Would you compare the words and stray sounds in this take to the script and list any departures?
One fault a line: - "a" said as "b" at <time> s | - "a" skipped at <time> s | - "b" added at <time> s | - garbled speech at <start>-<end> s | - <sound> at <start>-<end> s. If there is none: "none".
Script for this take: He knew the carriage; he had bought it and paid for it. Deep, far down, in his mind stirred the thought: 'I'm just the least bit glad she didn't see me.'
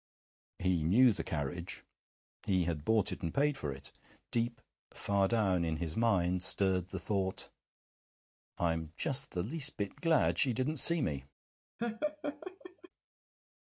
- laugh at 11.8-12.9 s